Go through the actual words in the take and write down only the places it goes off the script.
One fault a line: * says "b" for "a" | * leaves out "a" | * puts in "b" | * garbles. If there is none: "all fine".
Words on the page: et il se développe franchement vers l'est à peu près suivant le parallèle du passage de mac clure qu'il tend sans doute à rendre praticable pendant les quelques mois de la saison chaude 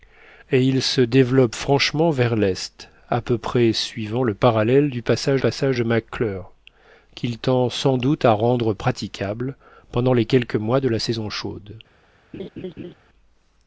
* puts in "passage"